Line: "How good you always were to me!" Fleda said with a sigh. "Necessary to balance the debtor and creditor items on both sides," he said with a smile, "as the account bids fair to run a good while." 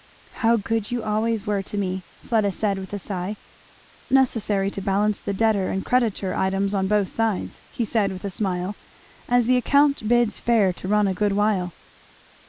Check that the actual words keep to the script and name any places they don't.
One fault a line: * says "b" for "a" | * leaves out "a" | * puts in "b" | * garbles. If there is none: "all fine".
all fine